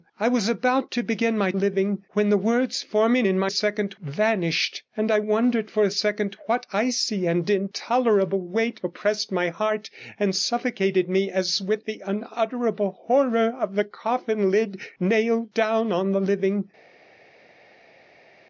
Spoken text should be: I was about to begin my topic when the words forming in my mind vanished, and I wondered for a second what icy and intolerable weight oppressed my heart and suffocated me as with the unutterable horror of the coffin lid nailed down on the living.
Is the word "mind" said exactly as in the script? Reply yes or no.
no